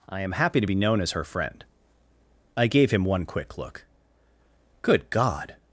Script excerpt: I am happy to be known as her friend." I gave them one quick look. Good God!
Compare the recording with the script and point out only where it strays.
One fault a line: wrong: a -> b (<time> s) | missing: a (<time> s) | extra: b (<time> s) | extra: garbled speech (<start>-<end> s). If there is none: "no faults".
wrong: them -> him (2.9 s)